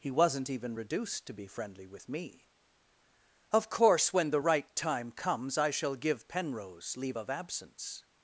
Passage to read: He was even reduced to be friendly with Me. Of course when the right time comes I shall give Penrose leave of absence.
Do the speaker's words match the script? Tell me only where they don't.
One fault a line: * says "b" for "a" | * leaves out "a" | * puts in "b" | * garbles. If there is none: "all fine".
* says "wasn't" for "was"